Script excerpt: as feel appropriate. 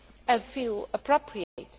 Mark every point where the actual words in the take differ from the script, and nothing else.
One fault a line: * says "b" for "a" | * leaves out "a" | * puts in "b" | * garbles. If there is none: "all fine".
all fine